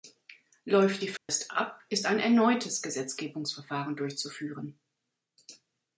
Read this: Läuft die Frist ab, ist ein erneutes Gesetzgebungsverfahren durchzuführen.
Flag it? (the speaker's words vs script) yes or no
no